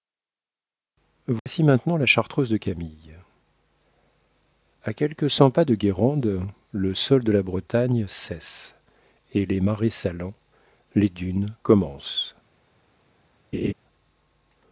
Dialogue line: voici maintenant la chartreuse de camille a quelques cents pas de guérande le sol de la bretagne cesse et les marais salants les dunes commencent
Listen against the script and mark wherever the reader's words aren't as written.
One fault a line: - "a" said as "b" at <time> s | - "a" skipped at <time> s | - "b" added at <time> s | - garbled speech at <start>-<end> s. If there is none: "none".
none